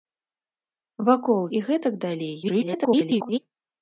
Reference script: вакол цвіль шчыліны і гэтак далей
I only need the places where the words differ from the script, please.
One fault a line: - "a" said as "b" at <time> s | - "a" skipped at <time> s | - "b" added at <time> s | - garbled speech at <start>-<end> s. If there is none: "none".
- "цвіль шчыліны" skipped at 1.4 s
- garbled speech at 2.4-3.4 s